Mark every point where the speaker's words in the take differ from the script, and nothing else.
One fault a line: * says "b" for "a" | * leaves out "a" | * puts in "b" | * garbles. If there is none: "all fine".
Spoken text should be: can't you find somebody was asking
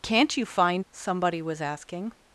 all fine